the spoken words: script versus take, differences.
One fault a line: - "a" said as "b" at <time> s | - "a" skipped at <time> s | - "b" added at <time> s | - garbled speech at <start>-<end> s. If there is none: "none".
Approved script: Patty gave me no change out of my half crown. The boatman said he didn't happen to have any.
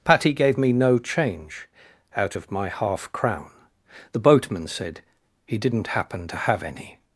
none